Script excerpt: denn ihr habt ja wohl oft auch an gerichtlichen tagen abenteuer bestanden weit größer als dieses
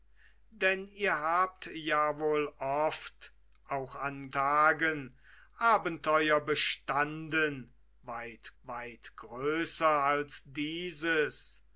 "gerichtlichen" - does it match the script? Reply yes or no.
no